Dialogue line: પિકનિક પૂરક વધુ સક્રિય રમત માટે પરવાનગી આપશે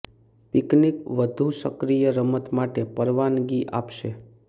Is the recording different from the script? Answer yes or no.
yes